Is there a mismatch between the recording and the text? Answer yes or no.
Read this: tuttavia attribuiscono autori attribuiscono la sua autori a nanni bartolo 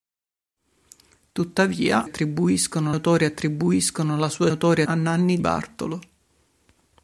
no